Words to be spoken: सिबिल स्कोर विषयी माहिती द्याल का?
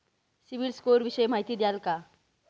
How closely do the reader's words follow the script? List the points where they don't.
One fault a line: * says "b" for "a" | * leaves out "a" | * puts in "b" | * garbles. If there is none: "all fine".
all fine